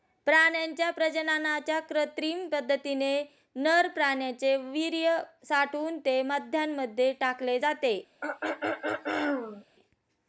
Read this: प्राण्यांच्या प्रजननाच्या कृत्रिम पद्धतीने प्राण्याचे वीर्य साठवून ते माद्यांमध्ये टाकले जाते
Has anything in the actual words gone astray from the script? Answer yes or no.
yes